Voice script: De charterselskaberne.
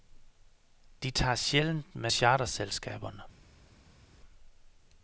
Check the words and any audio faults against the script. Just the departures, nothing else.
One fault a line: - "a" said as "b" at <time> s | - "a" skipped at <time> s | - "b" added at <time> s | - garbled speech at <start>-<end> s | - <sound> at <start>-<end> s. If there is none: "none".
- "tager sjældent med" added at 1.1 s